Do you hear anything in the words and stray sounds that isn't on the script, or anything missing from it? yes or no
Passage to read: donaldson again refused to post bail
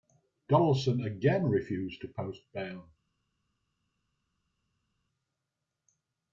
no